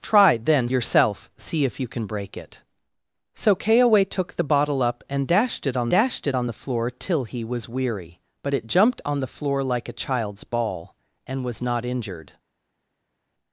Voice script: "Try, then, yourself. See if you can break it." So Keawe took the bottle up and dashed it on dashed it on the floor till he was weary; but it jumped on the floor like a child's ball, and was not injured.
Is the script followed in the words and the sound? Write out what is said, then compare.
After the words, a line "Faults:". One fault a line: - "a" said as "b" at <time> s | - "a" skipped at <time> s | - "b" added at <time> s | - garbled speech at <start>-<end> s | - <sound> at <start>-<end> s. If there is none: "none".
"Try, then, yourself. See if you can break it." So Keawe took the bottle up and dashed it on dashed it on the floor till he was weary; but it jumped on the floor like a child's ball, and was not injured.
Faults:
none